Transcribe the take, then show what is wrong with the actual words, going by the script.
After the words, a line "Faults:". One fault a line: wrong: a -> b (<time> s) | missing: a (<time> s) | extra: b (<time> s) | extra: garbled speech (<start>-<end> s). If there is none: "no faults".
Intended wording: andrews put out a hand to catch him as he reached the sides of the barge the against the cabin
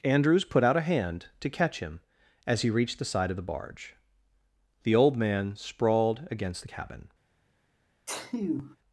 andrews put out a hand to catch him as he reached the side of the barge the old man sprawled against the cabin
Faults:
wrong: sides -> side (3.1 s)
extra: old man sprawled (5.0 s)